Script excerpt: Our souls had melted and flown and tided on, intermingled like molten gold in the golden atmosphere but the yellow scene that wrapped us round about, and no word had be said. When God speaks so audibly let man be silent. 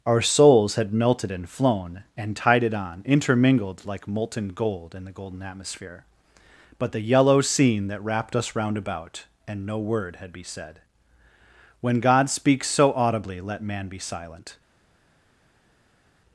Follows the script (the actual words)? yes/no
yes